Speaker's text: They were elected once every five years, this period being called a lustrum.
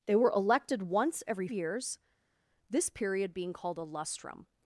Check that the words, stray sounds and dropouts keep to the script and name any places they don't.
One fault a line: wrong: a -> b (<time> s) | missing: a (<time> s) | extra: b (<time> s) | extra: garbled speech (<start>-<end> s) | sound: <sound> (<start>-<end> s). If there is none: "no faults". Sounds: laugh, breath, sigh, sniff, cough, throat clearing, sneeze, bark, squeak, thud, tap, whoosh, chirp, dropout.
missing: five (1.5 s)